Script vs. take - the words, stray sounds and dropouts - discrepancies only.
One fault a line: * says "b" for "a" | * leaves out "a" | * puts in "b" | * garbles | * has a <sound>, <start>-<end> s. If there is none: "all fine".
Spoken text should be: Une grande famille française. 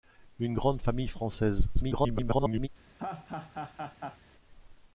* garbles
* has a laugh, 3.0-4.2 s